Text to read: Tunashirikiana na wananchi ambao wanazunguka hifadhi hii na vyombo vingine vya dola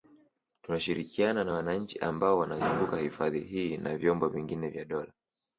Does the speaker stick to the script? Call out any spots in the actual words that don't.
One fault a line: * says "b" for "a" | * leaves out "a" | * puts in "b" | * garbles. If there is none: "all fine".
all fine